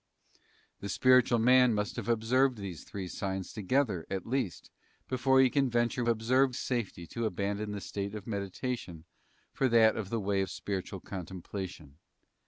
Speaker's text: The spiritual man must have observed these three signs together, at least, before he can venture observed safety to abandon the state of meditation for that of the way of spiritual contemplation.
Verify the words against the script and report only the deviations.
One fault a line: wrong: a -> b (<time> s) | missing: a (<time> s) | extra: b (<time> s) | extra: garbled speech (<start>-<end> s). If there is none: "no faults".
no faults